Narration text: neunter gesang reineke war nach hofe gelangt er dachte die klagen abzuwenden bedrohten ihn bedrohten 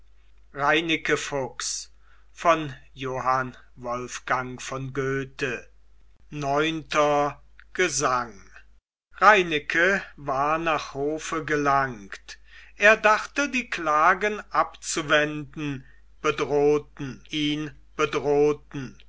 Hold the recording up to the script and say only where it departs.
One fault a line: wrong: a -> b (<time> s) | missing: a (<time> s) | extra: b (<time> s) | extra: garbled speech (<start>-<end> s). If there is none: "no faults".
no faults